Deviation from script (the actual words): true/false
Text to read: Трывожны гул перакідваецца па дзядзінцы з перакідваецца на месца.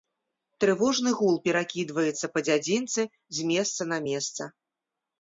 true